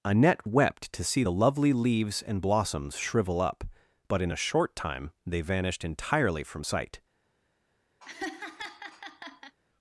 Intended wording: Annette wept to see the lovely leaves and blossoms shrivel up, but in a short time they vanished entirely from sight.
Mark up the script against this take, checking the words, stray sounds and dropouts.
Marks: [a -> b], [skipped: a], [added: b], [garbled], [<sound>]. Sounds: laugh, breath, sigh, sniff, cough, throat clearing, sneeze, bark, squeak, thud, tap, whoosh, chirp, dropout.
Annette wept to see the lovely leaves and blossoms shrivel up, but in a short time they vanished entirely from sight. [laugh]